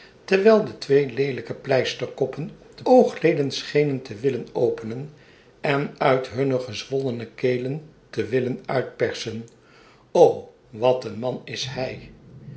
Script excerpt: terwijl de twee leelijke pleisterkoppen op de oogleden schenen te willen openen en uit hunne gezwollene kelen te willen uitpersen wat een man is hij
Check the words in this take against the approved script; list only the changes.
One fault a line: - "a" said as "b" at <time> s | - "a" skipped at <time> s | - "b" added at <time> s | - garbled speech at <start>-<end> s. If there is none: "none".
none